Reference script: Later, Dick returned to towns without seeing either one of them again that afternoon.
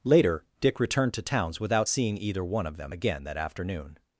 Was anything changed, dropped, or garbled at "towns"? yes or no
no